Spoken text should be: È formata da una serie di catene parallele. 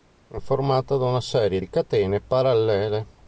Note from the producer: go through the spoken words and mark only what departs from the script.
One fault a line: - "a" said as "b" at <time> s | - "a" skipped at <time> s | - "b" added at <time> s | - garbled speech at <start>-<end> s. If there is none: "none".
none